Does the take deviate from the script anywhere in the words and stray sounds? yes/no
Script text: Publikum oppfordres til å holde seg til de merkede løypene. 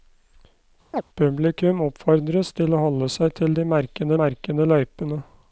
yes